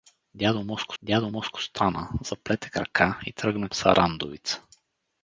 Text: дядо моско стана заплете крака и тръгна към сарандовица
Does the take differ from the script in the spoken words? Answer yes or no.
yes